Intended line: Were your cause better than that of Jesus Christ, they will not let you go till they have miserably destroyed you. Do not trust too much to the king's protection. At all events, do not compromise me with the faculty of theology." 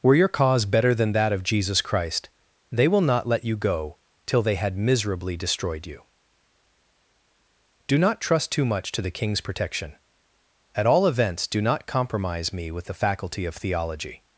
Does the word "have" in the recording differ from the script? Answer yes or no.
yes